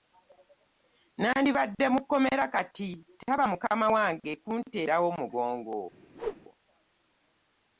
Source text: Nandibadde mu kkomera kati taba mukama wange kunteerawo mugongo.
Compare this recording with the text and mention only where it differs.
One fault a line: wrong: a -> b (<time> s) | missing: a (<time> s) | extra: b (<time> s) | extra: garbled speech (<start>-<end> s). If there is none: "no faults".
no faults